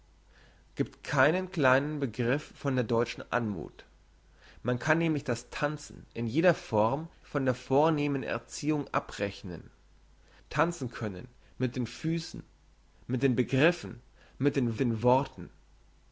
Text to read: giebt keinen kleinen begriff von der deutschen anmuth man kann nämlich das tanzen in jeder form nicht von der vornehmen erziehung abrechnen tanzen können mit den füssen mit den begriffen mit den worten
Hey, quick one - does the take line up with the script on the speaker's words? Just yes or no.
no